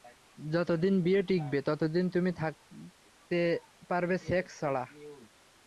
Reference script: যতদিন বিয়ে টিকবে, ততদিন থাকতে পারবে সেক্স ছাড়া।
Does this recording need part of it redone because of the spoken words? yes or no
yes